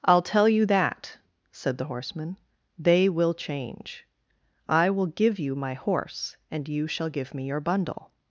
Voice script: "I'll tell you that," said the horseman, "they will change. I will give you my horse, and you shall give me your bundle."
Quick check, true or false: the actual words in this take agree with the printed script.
true